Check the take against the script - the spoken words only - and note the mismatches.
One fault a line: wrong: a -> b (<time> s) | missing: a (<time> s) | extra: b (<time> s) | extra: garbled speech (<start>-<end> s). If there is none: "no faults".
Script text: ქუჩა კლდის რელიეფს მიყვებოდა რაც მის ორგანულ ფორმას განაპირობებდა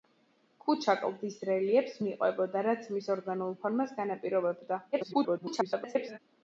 extra: garbled speech (4.9-6.2 s)